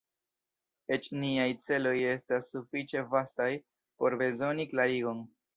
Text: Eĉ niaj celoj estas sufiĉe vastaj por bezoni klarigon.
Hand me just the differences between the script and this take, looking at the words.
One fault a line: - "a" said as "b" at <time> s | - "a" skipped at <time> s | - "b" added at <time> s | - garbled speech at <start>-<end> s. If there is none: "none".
none